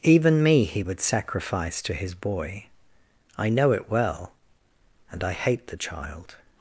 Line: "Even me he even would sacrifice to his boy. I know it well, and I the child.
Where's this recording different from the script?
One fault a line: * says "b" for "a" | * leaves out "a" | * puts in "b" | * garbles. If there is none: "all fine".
* leaves out "even"
* puts in "hate"